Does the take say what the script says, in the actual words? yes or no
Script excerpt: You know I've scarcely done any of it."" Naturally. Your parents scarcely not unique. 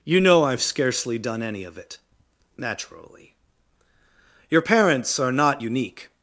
no